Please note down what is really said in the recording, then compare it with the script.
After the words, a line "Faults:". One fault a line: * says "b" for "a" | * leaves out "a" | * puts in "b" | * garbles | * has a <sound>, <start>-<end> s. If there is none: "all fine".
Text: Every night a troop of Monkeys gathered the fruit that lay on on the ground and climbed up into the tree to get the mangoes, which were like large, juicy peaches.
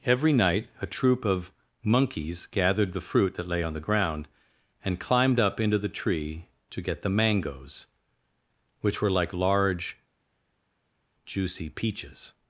Every night a troop of Monkeys gathered the fruit that lay on the ground and climbed up into the tree to get the mangoes, which were like large, juicy peaches.
Faults:
* leaves out "on"